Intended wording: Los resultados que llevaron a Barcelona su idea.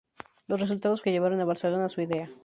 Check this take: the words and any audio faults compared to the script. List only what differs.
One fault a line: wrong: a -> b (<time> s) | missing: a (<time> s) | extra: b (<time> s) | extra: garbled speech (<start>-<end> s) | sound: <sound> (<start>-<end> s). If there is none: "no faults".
no faults